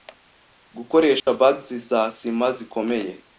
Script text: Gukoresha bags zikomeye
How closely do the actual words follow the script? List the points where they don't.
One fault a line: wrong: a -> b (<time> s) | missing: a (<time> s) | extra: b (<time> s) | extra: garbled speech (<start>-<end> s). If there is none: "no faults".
extra: za sima (1.7 s)